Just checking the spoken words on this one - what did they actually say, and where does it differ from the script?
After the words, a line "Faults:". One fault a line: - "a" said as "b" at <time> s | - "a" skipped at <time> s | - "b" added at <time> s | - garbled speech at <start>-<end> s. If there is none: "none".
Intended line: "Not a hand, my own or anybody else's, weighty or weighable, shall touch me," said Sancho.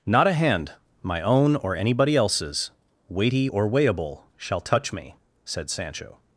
"Not a hand, my own or anybody else's, weighty or weighable, shall touch me," said Sancho.
Faults:
none